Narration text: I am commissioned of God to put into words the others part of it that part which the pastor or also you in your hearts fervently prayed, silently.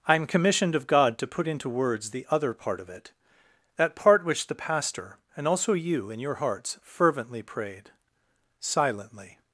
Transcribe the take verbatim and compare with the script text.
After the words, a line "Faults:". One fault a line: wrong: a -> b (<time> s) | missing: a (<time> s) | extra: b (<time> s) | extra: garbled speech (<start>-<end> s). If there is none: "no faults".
I am commissioned of God to put into words the other part of it that part which the pastor and also you in your hearts fervently prayed, silently.
Faults:
wrong: others -> other (2.3 s)
wrong: or -> and (5.4 s)